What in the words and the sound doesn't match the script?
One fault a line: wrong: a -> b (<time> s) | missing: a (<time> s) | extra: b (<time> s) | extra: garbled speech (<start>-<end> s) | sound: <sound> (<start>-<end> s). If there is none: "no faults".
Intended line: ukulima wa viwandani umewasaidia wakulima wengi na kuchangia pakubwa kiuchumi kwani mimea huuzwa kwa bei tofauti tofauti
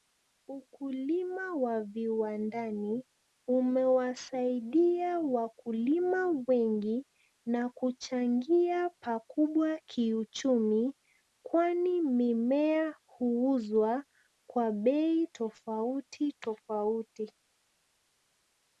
no faults